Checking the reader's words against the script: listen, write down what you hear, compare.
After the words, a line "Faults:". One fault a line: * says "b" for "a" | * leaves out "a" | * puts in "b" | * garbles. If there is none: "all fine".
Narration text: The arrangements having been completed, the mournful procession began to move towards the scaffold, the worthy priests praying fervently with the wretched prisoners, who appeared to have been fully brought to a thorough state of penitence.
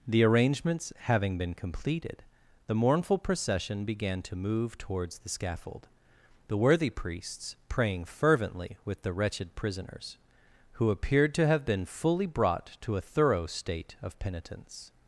The arrangements having been completed, the mournful procession began to move towards the scaffold, the worthy priests praying fervently with the wretched prisoners, who appeared to have been fully brought to a thorough state of penitence.
Faults:
all fine